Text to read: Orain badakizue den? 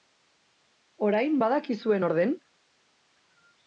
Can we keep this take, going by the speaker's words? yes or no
no